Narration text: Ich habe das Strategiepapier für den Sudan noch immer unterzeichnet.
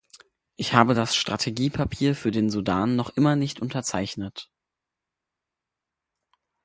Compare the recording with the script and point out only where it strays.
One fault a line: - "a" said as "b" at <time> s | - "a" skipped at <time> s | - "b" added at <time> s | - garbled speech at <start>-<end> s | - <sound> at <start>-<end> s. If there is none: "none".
- "nicht" added at 3.3 s